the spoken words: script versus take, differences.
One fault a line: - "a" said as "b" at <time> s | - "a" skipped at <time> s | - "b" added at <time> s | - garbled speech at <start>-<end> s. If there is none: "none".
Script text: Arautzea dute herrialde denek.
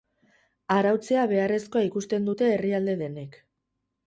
- "beharrezkoa ikusten" added at 1.3 s